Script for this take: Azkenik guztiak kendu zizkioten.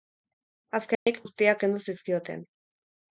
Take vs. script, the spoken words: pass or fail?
pass